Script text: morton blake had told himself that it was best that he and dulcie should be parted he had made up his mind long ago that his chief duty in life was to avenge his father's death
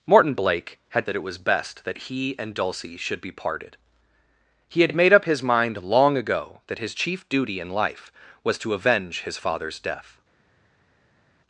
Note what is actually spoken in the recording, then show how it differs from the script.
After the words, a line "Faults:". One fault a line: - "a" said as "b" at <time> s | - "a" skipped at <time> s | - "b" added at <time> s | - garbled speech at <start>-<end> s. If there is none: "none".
morton blake had that it was best that he and dulcie should be parted he had had made up his mind long ago that his chief duty in life was to avenge his father's death
Faults:
- "told himself" skipped at 1.1 s
- "had" added at 4.9 s